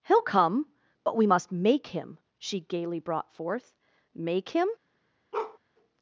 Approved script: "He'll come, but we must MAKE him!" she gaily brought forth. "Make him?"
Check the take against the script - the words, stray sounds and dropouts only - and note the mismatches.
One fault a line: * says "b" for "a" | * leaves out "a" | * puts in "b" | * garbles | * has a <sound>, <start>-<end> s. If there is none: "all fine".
* has a bark, 5.3-5.6 s